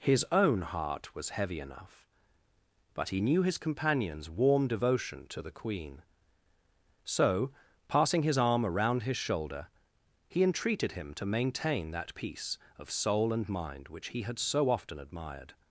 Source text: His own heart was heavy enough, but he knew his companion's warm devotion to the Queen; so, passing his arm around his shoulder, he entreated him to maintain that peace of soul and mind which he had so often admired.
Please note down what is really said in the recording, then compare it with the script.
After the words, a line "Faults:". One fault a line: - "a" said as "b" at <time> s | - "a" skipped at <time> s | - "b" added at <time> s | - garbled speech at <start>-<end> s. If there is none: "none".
His own heart was heavy enough, but he knew his companion's warm devotion to the Queen; so, passing his arm around his shoulder, he entreated him to maintain that peace of soul and mind which he had so often admired.
Faults:
none